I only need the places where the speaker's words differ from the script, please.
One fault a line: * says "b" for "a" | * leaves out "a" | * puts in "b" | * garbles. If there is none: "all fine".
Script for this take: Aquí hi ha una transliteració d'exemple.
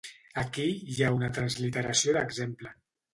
all fine